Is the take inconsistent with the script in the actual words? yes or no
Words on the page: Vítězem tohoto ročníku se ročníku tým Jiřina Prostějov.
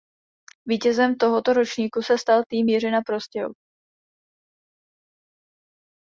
yes